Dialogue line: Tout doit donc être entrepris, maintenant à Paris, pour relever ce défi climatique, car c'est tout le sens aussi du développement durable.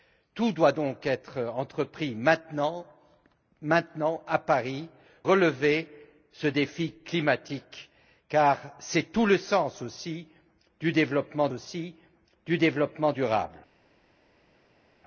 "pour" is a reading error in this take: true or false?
true